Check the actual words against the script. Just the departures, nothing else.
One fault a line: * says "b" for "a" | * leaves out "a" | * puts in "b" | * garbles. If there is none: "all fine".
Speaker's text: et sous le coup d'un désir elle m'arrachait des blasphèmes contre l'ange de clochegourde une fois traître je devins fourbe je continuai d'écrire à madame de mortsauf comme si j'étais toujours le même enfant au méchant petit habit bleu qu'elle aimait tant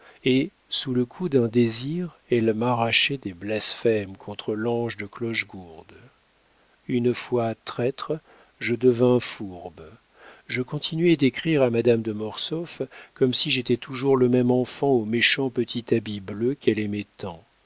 all fine